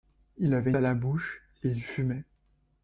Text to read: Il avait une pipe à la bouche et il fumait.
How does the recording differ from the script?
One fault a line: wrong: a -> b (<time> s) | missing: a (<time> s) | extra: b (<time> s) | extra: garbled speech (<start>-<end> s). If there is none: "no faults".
missing: une pipe (0.7 s)